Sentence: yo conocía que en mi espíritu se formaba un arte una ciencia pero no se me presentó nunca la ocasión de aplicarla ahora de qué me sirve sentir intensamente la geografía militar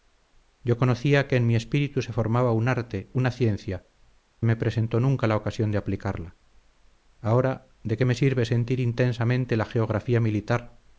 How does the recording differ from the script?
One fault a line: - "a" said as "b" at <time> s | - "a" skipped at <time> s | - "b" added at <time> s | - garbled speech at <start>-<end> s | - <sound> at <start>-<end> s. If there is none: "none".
- "pero no se" skipped at 3.9 s